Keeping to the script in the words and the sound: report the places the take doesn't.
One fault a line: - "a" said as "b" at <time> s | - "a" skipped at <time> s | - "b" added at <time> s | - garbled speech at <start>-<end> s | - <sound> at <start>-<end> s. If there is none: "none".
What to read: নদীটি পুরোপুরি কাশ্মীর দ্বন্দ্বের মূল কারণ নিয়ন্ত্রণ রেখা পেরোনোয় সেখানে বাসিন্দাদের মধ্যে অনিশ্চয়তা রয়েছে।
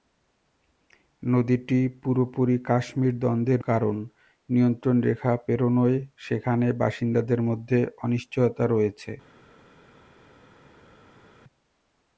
- "মূল" skipped at 3.6 s